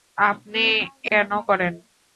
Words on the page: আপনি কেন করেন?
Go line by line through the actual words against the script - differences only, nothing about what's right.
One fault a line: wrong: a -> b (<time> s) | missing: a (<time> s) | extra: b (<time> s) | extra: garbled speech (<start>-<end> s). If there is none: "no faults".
no faults